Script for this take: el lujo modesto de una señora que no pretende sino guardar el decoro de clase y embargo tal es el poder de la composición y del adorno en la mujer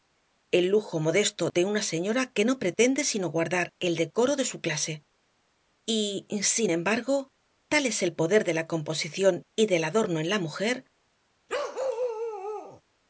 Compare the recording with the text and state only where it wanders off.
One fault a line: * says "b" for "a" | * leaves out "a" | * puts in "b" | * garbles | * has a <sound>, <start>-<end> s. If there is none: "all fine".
* puts in "su"
* puts in "sin"
* has a bark, 11.5-12.8 s